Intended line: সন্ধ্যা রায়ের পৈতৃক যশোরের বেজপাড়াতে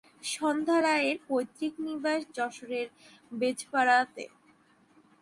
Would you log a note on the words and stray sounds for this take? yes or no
yes